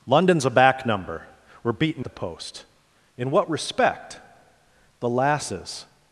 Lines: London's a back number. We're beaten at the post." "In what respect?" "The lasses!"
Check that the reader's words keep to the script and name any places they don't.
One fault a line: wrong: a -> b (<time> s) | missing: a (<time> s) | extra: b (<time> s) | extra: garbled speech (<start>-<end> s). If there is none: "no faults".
missing: at (2.0 s)